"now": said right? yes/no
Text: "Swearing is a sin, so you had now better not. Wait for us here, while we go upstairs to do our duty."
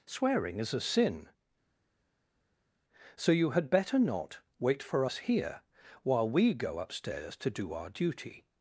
no